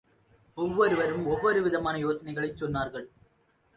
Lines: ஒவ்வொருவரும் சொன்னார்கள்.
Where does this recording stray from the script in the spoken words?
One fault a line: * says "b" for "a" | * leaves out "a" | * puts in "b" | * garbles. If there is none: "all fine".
* puts in "ஒவ்வொரு விதமான யோசனைகளைச்"